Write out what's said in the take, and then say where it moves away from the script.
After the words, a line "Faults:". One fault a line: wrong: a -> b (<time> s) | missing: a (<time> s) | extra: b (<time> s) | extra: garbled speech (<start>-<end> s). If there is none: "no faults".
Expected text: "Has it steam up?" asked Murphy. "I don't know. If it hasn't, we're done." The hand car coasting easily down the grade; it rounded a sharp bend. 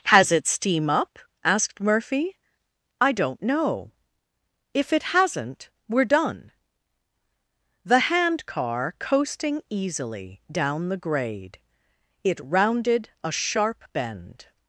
"Has it steam up?" asked Murphy. "I don't know. If it hasn't, we're done." The hand car coasting easily down the grade; it rounded a sharp bend.
Faults:
no faults